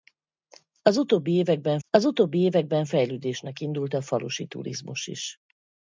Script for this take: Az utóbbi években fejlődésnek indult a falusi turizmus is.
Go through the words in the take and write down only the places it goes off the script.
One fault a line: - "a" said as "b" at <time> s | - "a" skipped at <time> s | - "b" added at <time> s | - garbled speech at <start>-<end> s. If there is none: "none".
- "az utóbbi években" added at 1.9 s